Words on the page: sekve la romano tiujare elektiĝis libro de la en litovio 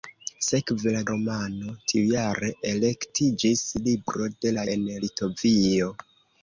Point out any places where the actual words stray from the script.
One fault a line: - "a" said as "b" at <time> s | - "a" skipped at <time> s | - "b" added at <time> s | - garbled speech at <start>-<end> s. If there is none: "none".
none